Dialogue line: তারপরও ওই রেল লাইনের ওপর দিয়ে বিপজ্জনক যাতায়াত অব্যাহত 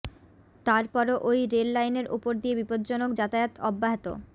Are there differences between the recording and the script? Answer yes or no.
no